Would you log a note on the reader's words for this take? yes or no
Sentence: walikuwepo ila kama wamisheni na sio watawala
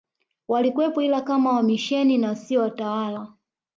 no